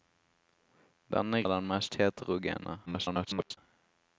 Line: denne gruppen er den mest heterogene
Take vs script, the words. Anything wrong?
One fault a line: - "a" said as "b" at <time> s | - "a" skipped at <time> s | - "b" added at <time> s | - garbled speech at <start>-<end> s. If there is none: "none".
- "gruppen" skipped at 1.4 s
- garbled speech at 2.9-3.6 s